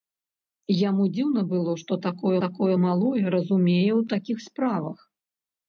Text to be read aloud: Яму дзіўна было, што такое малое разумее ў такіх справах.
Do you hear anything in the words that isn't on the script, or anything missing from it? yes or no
yes